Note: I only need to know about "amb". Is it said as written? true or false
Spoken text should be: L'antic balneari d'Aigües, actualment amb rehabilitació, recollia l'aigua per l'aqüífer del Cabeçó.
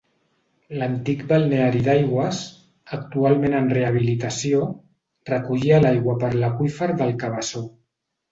false